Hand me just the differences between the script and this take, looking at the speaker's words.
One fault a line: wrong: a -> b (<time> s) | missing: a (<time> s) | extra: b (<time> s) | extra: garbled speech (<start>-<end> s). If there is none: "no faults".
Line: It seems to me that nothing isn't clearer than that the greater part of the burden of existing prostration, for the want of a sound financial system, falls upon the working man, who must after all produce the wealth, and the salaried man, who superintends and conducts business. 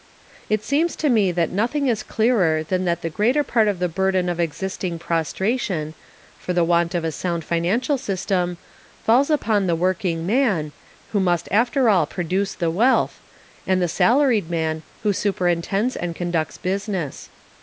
wrong: isn't -> is (1.9 s)